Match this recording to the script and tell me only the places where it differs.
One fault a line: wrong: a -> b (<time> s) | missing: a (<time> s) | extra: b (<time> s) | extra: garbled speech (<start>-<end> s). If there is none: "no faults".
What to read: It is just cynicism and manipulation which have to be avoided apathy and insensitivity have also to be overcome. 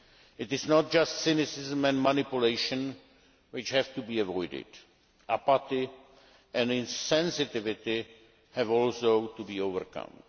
extra: not (0.7 s)